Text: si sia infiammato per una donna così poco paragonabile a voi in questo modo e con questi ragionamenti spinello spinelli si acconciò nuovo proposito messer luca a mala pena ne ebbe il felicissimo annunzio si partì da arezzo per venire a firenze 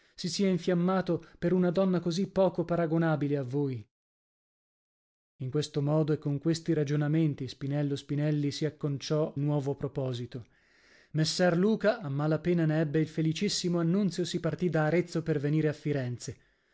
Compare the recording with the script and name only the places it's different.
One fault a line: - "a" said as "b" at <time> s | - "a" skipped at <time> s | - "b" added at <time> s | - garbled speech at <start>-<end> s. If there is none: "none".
none